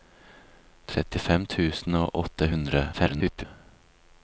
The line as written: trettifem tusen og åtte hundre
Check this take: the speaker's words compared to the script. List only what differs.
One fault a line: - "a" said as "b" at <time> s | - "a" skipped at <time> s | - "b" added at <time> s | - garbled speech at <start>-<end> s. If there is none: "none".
- garbled speech at 2.9-3.4 s